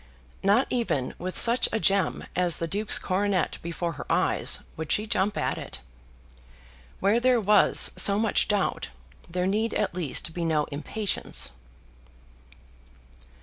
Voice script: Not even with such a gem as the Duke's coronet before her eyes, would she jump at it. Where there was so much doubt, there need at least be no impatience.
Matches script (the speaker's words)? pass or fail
pass